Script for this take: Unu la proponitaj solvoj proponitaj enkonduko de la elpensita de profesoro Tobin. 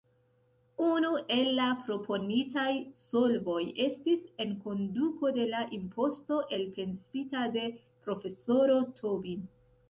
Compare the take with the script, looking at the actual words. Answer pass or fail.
fail